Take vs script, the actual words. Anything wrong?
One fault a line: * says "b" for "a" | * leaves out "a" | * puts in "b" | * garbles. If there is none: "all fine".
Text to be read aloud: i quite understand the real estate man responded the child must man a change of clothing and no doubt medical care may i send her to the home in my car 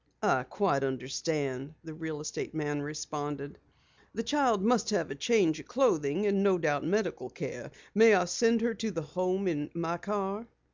* says "have" for "man"